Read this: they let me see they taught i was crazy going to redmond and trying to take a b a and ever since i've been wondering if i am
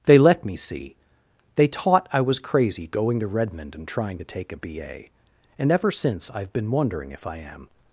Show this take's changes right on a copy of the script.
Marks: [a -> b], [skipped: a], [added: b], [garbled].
they let me see they taught i was crazy going to redmond and trying to take a b a and ever since i've been wondering if i am